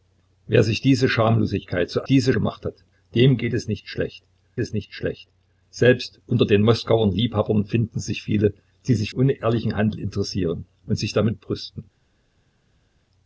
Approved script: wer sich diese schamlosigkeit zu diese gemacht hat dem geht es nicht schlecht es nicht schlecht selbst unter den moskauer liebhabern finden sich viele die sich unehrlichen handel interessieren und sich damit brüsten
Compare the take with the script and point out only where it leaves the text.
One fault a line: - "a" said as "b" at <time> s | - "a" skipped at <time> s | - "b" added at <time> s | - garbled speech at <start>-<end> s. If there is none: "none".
none